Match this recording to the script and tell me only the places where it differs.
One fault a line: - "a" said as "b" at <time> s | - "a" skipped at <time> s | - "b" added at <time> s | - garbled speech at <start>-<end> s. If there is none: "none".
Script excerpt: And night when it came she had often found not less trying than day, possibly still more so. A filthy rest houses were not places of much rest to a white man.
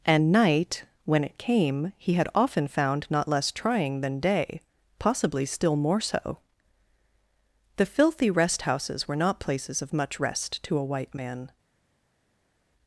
- "she" said as "he" at 2.0 s
- "A" said as "The" at 7.8 s